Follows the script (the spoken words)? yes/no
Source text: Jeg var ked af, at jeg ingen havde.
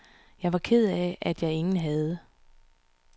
yes